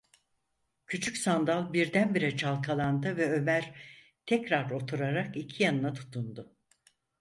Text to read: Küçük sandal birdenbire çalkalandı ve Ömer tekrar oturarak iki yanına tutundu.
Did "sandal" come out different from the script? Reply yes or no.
no